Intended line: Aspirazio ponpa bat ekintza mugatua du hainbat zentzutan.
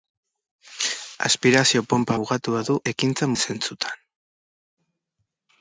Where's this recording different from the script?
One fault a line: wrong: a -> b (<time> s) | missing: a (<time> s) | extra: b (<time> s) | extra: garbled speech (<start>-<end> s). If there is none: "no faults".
missing: bat ekintza (2.2 s)
wrong: hainbat -> ekintza (2.9 s)